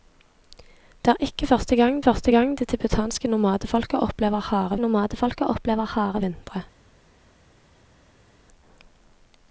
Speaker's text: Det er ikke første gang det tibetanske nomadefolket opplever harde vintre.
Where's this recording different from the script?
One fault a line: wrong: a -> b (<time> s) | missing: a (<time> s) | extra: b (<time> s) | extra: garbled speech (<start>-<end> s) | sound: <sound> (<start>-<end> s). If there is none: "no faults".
extra: første gang (2.0 s)
extra: nomadefolket opplever harde (4.8 s)